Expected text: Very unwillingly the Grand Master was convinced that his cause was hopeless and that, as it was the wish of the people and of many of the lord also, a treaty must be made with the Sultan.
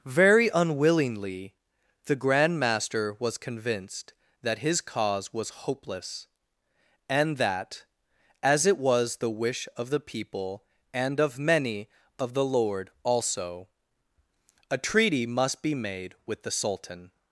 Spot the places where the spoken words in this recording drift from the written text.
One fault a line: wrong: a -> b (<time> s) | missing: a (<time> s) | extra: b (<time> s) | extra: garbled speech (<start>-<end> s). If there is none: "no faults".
no faults